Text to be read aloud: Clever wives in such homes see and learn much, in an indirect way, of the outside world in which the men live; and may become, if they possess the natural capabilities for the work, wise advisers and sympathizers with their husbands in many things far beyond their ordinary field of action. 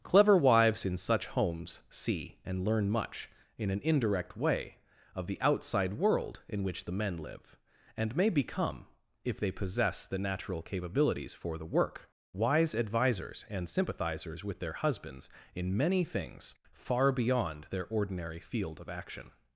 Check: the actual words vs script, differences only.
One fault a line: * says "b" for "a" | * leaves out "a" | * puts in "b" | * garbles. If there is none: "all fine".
all fine